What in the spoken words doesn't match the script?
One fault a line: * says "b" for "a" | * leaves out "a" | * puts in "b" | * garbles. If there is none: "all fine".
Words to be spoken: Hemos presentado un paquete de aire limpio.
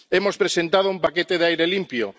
all fine